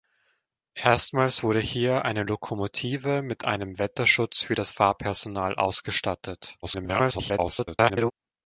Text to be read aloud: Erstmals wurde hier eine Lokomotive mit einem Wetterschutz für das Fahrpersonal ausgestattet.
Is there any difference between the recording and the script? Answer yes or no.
yes